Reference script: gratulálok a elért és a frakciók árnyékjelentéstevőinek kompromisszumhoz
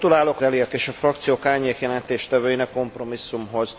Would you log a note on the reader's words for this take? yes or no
no